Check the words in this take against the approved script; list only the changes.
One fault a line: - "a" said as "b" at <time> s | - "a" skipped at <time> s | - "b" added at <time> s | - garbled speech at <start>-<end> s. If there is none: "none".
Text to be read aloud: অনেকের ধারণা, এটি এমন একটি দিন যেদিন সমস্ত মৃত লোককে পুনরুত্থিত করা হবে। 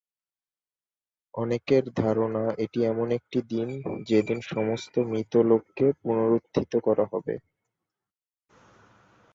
none